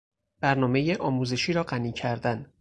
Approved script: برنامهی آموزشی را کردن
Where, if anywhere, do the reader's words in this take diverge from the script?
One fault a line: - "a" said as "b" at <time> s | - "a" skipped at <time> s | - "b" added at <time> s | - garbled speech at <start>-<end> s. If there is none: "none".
- "غنی" added at 1.6 s